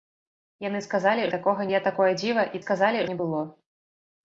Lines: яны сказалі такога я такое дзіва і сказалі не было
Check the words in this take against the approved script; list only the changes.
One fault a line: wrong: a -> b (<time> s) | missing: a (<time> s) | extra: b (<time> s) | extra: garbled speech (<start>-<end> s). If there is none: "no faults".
no faults